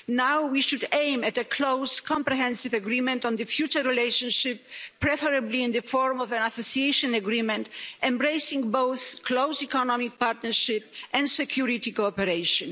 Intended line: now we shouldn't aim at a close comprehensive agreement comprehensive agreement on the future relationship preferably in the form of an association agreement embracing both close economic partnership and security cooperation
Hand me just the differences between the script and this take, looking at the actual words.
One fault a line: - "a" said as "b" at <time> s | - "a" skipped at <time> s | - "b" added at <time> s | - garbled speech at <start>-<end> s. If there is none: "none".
- "shouldn't" said as "should" at 0.6 s
- "comprehensive agreement" skipped at 3.2 s